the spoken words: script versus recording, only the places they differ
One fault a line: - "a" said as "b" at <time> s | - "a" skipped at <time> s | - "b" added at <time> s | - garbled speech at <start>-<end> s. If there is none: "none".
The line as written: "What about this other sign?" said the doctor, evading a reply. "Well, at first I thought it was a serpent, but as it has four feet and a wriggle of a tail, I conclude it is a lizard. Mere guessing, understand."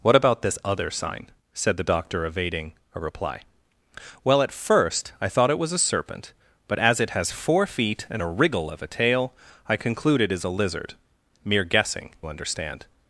none